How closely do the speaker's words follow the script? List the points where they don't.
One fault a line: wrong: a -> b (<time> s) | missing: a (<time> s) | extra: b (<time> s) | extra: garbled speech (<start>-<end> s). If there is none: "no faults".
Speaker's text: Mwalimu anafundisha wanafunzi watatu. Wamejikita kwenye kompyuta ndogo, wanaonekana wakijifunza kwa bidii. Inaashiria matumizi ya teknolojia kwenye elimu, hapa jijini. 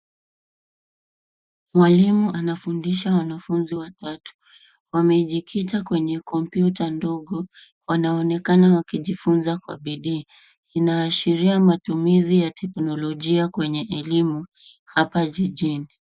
no faults